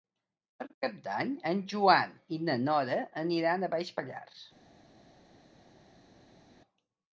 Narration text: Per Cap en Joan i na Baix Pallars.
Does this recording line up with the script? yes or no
no